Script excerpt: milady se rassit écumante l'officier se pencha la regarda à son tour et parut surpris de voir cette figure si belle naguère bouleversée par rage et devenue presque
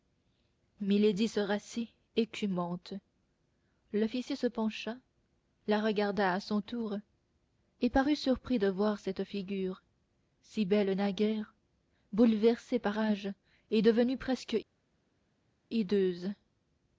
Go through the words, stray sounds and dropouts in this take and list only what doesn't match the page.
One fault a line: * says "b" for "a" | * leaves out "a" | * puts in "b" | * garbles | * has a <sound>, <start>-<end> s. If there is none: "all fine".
all fine